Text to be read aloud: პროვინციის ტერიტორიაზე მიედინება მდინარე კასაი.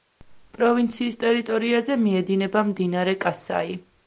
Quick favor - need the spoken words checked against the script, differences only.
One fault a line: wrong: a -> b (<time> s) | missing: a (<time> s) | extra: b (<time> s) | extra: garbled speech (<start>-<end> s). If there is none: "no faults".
no faults